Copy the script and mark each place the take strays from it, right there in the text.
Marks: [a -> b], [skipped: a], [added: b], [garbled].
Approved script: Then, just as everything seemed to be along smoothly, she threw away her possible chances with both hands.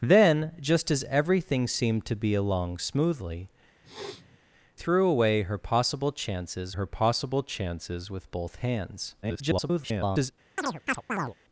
Then, just as everything seemed to be along smoothly, [skipped: she] threw away her possible chances [added: her possible chances] with both hands. [garbled]